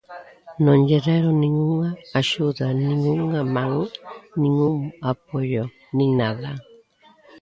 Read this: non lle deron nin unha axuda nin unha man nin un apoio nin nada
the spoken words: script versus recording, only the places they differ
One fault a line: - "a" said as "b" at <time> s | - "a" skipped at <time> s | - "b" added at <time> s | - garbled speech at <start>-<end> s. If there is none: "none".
none